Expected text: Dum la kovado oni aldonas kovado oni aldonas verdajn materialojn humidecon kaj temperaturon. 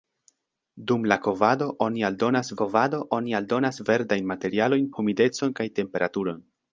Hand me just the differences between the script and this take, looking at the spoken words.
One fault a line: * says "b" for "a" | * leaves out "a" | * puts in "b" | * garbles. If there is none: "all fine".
all fine